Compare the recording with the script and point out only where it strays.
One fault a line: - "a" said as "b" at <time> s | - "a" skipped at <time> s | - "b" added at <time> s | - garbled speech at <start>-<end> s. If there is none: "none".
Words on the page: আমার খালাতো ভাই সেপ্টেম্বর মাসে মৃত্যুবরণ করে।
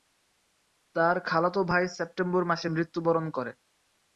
- "আমার" said as "তার" at 0.9 s